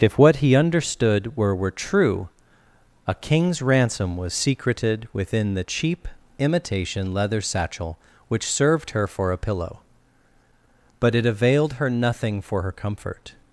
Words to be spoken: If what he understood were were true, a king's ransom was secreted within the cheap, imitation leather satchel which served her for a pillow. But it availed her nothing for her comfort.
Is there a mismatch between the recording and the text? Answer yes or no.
no